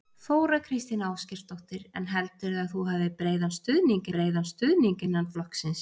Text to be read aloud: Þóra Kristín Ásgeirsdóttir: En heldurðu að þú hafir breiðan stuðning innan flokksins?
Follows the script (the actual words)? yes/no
no